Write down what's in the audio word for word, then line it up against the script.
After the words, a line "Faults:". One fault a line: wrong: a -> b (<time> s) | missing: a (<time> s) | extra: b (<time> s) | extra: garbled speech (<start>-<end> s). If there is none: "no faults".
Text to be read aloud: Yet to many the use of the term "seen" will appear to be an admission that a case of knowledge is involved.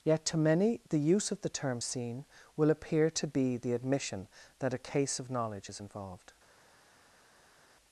Yet to many the use of the term "seen" will appear to be the admission that a case of knowledge is involved.
Faults:
wrong: an -> the (3.6 s)